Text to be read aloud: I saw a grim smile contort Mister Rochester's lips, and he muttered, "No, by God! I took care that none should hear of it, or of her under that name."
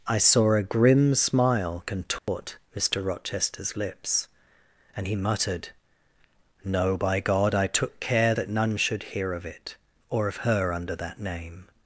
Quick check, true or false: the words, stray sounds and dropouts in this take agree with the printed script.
false